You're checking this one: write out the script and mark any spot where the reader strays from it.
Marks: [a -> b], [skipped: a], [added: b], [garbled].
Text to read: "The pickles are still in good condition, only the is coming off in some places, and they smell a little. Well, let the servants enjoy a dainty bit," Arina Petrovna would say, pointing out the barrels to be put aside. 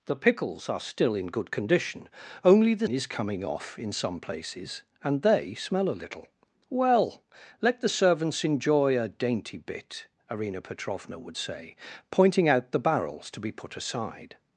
"The pickles are still in good condition, only the is coming off in some places, and they smell a little. Well, let the servants enjoy a dainty bit," Arina Petrovna would say, pointing out the barrels to be put aside.